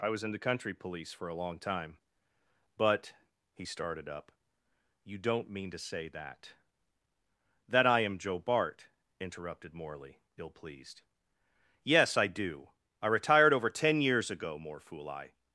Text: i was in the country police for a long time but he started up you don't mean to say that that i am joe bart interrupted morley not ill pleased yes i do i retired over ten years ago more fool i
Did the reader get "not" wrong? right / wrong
wrong